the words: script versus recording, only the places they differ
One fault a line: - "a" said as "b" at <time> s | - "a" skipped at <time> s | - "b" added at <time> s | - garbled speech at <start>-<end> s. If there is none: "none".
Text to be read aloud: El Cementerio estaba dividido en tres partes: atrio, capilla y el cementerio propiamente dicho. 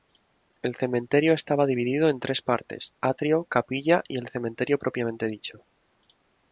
none